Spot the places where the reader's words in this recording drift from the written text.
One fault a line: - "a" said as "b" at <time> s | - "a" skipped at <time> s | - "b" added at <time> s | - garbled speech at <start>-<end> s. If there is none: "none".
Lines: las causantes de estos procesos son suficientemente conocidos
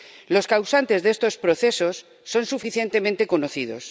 - "las" said as "los" at 0.3 s